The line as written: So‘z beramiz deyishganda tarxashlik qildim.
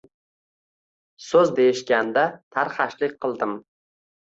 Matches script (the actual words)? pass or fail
fail